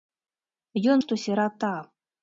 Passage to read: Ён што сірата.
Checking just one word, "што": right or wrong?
right